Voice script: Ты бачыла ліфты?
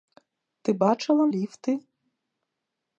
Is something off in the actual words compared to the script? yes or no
no